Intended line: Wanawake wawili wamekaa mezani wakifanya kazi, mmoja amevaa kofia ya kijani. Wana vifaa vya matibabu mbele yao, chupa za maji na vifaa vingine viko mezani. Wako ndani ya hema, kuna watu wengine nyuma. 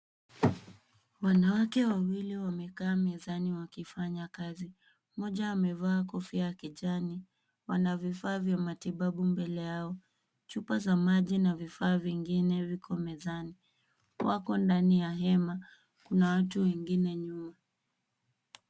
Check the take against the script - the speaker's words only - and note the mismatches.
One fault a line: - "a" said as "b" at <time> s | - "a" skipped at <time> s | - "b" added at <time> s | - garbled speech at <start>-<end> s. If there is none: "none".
none